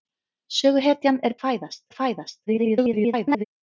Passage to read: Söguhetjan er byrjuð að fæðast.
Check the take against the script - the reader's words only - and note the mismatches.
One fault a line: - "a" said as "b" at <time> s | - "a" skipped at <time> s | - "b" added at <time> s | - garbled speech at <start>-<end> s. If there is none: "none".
- "byrjuð" said as "fæðast" at 1.4 s
- garbled speech at 2.5-3.4 s